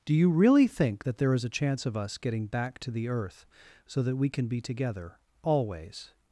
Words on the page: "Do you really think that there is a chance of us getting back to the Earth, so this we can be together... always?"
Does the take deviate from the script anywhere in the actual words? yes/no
yes